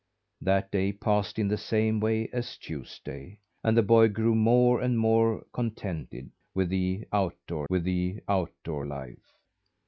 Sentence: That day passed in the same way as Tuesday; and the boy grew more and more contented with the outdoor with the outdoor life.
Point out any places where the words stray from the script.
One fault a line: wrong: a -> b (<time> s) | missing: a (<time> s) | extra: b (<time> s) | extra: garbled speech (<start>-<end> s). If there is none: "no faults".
no faults